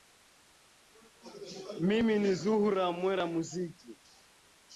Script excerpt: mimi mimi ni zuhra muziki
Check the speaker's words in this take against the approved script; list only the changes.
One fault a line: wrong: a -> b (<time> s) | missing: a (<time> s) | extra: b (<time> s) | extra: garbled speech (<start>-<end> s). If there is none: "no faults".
missing: mimi (2.1 s)
extra: mwera (3.0 s)